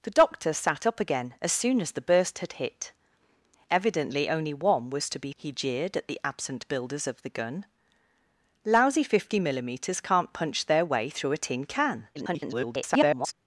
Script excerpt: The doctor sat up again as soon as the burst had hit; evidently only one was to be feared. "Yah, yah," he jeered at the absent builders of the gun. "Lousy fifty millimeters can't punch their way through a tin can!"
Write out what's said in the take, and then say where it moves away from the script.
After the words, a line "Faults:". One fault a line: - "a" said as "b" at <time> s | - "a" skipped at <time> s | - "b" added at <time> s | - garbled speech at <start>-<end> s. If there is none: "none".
The doctor sat up again as soon as the burst had hit; evidently only one was to be," he jeered at the absent builders of the gun. "Lousy fifty millimeters can't punch their way through a tin can!" [garbled]
Faults:
- "feared Yah yah" skipped at 5.3 s
- garbled speech at 12.1-13.3 s